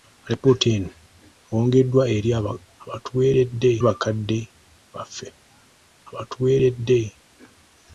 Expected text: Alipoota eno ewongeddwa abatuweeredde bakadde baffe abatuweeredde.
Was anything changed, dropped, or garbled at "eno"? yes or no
no